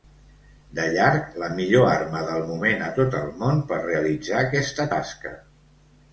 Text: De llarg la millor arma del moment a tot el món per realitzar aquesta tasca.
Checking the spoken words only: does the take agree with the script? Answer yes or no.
yes